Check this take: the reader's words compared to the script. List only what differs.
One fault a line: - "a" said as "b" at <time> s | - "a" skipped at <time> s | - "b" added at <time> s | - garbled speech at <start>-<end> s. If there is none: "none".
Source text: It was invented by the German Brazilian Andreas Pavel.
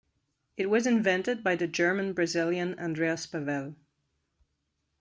none